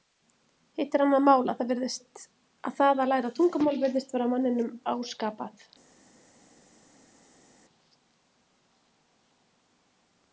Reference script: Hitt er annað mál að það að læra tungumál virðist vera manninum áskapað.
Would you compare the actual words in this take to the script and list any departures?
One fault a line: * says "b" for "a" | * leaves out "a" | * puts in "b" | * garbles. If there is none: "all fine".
all fine